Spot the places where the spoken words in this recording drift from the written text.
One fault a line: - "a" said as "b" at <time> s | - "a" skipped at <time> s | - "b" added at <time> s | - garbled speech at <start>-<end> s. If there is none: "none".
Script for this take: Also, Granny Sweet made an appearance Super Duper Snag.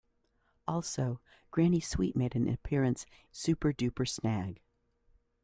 none